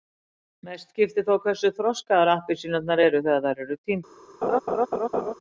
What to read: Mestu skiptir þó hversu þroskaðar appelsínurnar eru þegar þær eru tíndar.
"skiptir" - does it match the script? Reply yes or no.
yes